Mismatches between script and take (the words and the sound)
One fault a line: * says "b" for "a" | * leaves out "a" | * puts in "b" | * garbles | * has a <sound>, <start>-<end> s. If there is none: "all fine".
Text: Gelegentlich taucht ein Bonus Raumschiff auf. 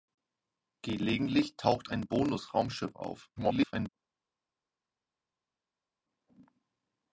* garbles